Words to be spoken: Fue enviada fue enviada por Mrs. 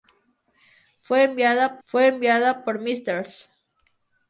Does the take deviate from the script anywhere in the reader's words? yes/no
no